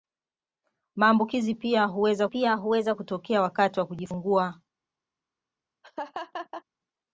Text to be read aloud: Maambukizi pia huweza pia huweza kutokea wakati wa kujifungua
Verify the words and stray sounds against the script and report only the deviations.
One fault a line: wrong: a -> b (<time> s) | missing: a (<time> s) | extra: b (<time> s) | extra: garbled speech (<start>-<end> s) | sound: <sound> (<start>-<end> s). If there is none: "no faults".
sound: laugh (5.8-6.6 s)